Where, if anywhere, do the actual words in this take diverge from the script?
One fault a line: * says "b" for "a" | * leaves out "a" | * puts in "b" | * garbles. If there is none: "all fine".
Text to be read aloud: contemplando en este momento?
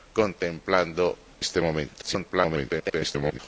* leaves out "en"
* garbles